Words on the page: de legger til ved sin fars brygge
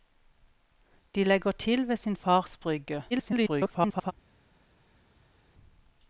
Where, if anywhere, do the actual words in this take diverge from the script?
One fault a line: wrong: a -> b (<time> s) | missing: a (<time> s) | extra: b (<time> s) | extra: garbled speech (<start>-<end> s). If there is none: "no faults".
extra: garbled speech (3.1-4.1 s)